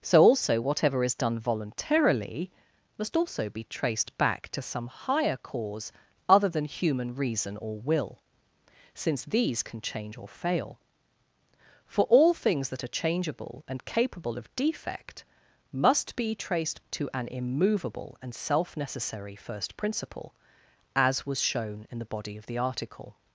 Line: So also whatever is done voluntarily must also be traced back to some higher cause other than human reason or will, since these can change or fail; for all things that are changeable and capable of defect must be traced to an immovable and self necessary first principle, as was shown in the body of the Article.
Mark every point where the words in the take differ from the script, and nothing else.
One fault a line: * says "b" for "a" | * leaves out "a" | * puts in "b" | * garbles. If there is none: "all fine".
all fine